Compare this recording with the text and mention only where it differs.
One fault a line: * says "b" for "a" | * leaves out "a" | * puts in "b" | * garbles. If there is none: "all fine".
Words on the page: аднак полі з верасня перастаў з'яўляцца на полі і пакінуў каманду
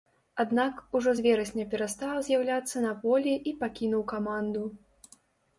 * says "ужо" for "полі"